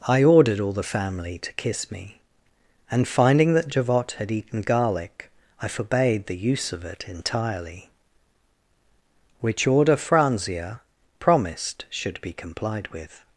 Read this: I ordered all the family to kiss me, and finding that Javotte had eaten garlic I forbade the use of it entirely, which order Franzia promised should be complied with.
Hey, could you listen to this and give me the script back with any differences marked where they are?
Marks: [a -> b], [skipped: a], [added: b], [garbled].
I ordered all the family to kiss me, and finding that Javotte had eaten garlic I forbade the use of it entirely, which order Franzia promised should be complied with.